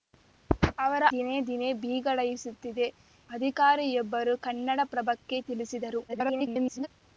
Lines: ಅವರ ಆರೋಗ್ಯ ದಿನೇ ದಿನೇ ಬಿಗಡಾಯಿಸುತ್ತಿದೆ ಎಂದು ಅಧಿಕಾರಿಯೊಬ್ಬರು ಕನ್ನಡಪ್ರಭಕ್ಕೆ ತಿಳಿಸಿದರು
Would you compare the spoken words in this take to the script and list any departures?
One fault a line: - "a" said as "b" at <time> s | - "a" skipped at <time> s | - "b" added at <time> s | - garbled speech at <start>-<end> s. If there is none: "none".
- "ಆರೋಗ್ಯ" skipped at 1.0 s
- "ಎಂದು" skipped at 2.9 s
- garbled speech at 6.1-6.9 s